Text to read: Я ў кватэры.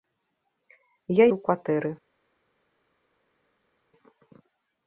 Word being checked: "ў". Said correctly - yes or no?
yes